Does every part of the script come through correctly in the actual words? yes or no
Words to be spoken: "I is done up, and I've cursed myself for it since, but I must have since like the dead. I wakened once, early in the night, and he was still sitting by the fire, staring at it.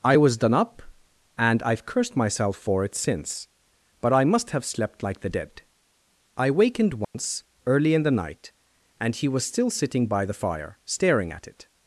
no